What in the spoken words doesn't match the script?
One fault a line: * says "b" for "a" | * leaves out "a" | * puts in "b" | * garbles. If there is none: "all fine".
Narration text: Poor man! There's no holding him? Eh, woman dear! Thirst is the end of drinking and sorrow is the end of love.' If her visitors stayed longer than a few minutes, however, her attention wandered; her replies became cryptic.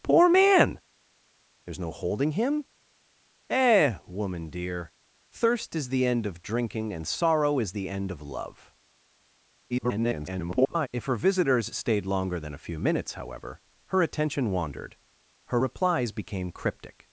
* garbles